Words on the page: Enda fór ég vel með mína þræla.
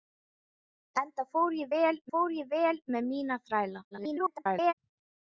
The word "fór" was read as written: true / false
true